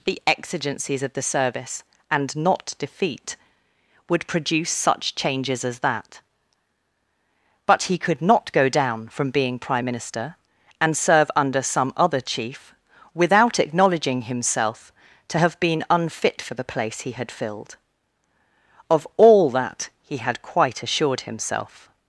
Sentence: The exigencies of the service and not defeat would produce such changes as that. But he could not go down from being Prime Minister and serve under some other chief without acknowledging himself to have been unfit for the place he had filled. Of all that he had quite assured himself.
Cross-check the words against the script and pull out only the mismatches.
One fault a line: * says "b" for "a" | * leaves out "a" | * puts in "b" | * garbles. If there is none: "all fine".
all fine